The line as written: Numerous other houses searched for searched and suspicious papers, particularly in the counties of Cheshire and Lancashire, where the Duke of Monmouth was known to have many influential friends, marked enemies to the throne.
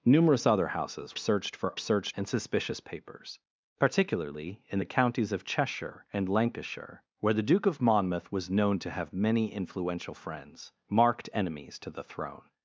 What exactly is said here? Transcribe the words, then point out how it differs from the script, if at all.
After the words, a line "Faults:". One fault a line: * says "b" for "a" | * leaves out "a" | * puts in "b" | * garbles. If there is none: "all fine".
Numerous other houses searched for searched and suspicious papers, particularly in the counties of Cheshire and Lancashire, where the Duke of Monmouth was known to have many influential friends, marked enemies to the throne.
Faults:
all fine